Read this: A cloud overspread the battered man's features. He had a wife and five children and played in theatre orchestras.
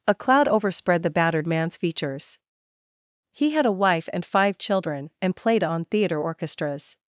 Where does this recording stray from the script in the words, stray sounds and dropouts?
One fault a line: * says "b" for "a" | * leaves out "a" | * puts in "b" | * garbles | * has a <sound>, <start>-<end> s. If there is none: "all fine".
* says "on" for "in"